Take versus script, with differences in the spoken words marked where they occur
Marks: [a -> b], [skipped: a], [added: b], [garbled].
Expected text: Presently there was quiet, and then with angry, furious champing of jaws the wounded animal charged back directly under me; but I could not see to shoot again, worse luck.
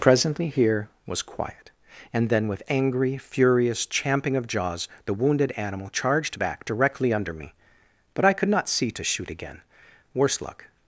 Presently [there -> here] was quiet, and then with angry, furious champing of jaws the wounded animal charged back directly under me; but I could not see to shoot again, worse luck.